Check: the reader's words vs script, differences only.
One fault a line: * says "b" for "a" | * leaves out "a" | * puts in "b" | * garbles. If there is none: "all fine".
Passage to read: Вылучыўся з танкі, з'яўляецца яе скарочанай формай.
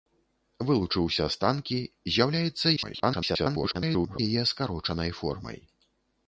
* garbles